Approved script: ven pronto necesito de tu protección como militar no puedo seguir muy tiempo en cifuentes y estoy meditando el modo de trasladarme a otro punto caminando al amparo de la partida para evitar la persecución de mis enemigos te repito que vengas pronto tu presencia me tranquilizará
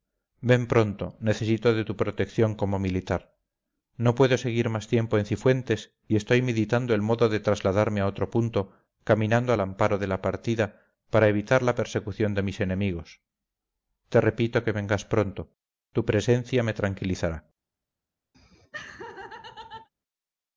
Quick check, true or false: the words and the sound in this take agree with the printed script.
false